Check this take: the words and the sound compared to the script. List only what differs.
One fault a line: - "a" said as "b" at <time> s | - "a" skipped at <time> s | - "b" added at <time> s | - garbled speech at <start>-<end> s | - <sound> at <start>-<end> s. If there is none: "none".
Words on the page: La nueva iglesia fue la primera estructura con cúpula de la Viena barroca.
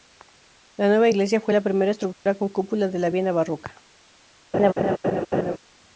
- dropout at 2.1-2.3 s
- laugh at 4.5-5.6 s